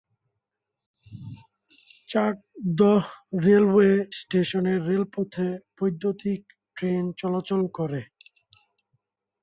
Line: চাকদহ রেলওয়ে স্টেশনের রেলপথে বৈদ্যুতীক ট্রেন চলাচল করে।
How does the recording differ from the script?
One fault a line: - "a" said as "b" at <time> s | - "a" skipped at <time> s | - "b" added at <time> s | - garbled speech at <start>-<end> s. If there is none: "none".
none